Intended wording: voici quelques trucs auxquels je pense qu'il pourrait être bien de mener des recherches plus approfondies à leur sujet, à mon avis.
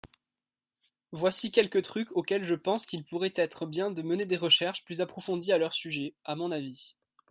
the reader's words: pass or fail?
pass